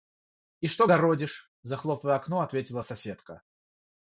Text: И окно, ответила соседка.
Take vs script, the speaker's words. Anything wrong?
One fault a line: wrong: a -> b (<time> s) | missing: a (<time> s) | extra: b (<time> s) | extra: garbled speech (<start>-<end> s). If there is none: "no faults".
extra: что городишь захлопывая (0.7 s)